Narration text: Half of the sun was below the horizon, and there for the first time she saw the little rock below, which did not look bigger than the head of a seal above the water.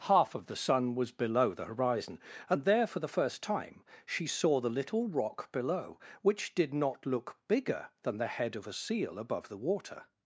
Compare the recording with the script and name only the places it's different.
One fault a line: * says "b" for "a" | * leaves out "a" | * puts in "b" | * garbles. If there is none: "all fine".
all fine